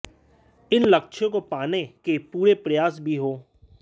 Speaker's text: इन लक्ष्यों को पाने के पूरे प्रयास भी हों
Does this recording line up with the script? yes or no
yes